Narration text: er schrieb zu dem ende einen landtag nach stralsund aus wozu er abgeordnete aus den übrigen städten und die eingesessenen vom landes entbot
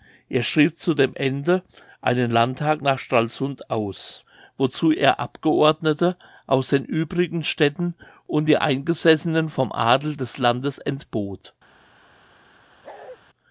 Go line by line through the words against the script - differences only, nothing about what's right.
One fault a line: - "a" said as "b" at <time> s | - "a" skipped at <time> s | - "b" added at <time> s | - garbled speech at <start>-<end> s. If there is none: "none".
- "adel des" added at 9.7 s